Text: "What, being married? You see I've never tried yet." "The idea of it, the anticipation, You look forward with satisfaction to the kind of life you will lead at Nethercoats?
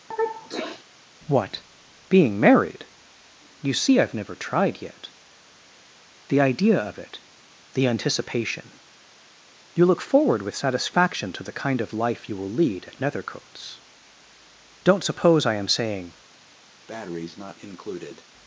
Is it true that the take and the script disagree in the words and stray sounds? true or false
true